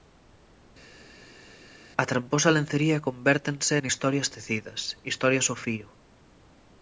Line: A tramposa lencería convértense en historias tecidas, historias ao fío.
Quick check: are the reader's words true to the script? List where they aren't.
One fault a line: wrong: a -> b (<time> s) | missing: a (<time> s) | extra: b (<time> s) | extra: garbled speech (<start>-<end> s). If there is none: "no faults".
no faults